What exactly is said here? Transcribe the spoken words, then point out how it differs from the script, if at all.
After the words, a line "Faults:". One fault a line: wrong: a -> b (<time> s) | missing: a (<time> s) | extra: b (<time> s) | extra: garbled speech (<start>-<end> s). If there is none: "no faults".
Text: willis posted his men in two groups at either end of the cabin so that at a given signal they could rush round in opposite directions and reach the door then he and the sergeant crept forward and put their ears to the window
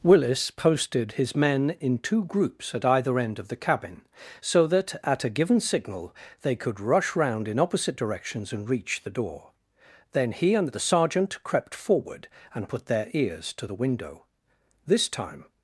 willis posted his men in two groups at either end of the cabin so that at a given signal they could rush round in opposite directions and reach the door then he and the sergeant crept forward and put their ears to the window this time
Faults:
extra: this time (14.9 s)